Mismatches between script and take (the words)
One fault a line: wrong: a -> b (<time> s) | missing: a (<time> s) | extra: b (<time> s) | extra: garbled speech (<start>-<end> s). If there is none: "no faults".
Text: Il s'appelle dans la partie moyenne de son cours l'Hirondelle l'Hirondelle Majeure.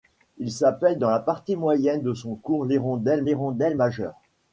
no faults